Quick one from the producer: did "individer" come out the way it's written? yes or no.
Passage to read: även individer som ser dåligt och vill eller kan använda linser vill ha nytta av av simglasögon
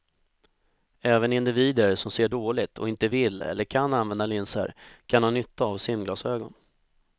yes